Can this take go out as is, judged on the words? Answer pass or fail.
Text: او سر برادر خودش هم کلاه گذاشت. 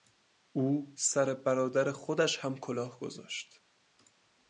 pass